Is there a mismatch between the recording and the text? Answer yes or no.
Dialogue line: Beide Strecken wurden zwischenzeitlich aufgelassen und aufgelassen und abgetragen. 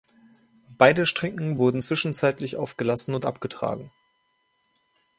yes